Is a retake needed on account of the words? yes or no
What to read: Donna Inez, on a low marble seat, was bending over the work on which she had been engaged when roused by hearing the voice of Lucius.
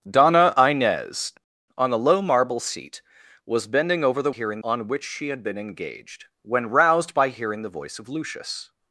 yes